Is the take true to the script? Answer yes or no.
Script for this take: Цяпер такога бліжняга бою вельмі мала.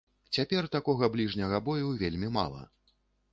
yes